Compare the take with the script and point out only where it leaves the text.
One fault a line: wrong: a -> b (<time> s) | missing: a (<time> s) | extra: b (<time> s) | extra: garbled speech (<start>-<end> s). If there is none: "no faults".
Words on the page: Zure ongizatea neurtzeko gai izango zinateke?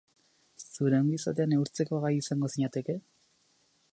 no faults